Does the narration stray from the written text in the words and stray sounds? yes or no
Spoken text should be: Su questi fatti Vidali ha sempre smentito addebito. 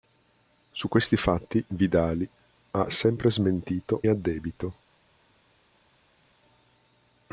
no